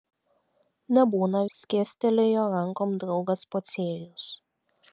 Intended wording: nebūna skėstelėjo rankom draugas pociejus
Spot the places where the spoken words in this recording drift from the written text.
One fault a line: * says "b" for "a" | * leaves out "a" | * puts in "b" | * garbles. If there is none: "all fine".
all fine